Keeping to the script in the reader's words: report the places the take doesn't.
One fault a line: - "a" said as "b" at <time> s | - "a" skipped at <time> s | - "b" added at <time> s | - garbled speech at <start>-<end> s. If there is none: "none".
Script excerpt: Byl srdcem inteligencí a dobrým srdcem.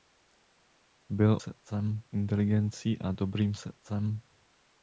none